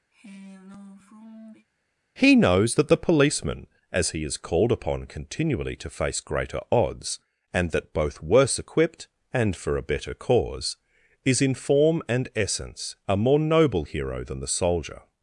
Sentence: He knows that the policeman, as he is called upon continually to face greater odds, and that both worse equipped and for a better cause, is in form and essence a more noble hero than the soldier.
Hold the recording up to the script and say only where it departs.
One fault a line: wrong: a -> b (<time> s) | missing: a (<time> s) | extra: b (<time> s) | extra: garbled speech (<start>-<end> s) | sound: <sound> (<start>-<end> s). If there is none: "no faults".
sound: sigh (0.1-1.7 s)